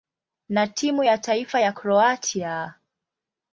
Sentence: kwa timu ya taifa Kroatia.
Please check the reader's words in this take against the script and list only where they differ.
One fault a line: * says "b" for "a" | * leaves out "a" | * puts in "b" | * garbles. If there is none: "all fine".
* says "na" for "kwa"
* puts in "ya"